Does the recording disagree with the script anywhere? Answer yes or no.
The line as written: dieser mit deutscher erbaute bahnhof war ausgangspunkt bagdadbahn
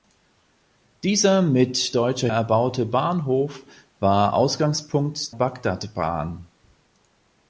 no